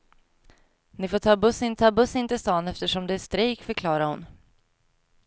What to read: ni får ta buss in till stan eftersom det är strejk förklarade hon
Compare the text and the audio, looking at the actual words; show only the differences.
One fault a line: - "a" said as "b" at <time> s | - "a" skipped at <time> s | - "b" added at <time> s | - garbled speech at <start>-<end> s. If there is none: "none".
- "ta buss in" added at 1.7 s